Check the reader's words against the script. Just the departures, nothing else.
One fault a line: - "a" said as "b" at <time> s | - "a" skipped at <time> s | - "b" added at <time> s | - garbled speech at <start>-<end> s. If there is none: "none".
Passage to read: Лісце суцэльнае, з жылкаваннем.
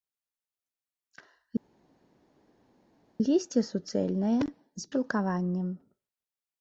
none